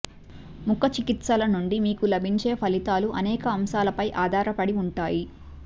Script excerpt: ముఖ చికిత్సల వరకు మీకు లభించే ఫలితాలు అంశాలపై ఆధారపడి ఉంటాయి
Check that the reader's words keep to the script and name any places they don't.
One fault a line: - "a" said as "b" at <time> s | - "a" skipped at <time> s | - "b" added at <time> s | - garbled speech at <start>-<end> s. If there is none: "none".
- "వరకు" said as "నుండి" at 1.5 s
- "అనేక" added at 3.2 s